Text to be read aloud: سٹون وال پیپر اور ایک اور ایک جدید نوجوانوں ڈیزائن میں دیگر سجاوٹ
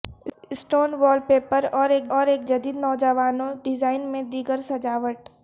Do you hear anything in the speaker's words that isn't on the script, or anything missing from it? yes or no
no